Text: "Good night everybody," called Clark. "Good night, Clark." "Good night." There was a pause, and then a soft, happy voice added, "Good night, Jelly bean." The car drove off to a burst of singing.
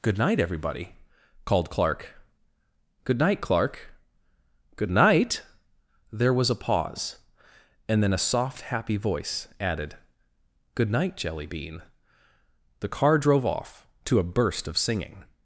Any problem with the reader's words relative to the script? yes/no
no